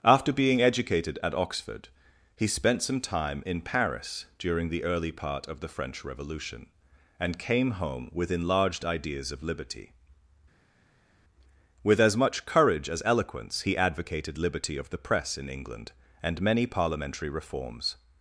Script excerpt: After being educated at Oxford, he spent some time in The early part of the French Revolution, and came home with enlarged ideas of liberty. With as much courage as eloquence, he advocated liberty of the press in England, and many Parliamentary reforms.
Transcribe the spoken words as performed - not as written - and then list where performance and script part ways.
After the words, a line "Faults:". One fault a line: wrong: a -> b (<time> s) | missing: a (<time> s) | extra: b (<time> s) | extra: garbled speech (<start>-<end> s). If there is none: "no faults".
After being educated at Oxford, he spent some time in Paris during the early part of the French Revolution, and came home with enlarged ideas of liberty. With as much courage as eloquence, he advocated liberty of the press in England, and many Parliamentary reforms.
Faults:
extra: Paris during (3.6 s)